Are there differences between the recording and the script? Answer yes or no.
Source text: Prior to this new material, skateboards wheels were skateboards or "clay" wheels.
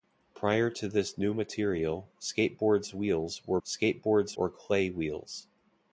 no